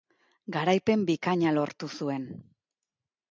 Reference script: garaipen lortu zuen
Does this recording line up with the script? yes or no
no